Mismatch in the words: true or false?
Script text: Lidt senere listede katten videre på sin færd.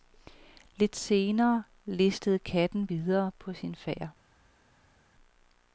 false